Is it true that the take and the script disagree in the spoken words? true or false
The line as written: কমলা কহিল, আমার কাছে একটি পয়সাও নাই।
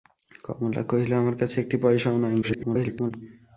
true